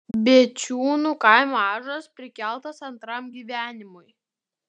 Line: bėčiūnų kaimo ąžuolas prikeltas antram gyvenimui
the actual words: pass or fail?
pass